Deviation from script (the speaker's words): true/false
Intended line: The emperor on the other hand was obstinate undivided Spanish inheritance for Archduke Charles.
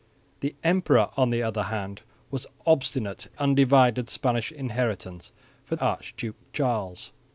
false